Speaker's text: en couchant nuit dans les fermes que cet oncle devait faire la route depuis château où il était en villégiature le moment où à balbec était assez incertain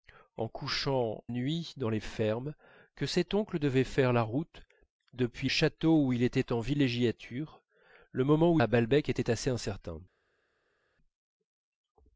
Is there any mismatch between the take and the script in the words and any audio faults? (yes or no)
no